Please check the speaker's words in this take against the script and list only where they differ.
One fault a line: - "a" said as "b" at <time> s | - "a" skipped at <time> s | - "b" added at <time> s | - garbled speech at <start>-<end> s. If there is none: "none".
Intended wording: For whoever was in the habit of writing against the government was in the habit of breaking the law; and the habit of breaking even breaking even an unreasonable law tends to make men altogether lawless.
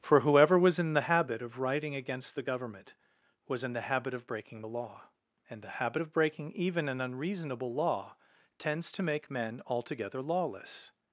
- "breaking even" skipped at 6.9 s